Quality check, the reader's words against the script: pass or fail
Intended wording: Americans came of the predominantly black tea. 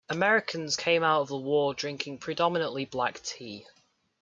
fail